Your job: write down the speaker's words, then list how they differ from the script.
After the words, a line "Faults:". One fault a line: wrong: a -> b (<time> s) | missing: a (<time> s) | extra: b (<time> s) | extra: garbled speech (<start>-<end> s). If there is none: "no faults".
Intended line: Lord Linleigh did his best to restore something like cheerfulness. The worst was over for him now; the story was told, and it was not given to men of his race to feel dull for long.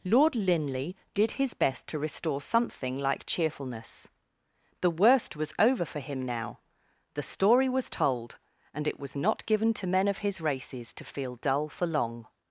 Lord Linleigh did his best to restore something like cheerfulness. The worst was over for him now; the story was told, and it was not given to men of his races to feel dull for long.
Faults:
wrong: race -> races (10.4 s)